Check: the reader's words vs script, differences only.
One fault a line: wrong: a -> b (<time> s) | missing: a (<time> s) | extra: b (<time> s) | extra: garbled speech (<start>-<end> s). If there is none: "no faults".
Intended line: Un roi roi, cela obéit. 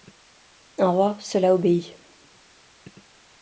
missing: roi (1.1 s)